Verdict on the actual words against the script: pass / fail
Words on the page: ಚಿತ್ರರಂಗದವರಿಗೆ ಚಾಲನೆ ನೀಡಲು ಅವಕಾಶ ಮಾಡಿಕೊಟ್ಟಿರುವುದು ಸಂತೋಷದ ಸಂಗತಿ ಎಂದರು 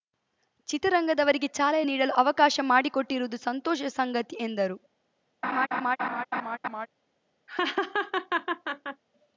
pass